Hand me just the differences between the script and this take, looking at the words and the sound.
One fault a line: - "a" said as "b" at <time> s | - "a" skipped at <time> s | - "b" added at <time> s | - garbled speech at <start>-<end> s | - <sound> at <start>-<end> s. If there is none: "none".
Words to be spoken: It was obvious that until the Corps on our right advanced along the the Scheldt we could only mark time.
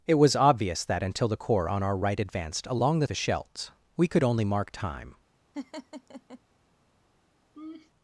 - laugh at 5.5-6.4 s
- laugh at 7.5-7.9 s